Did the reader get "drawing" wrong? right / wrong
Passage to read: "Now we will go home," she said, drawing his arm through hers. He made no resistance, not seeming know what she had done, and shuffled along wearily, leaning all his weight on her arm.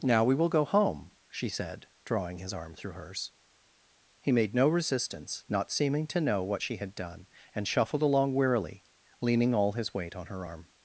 right